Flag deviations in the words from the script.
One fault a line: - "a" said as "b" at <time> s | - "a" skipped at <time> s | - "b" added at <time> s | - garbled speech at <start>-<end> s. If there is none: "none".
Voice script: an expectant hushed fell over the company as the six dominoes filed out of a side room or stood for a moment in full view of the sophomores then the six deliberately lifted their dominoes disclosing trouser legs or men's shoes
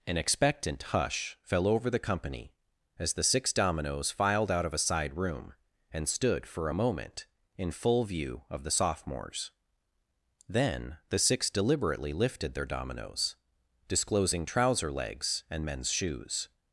- "hushed" said as "hush" at 0.8 s
- "or" said as "and" at 5.9 s
- "or" said as "and" at 15.5 s